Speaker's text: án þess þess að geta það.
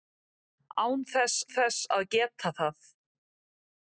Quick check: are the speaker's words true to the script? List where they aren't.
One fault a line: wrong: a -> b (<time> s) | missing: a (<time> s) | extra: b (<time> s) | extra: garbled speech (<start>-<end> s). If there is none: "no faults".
no faults